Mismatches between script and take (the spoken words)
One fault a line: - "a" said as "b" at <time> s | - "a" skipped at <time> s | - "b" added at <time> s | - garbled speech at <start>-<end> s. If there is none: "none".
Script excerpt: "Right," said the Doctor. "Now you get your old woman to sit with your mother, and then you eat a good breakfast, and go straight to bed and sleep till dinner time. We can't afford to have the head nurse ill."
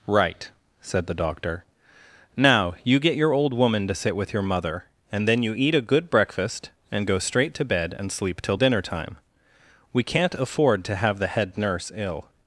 none